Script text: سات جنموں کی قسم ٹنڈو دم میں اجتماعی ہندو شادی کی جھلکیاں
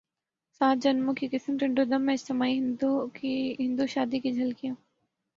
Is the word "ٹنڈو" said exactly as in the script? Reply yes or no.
yes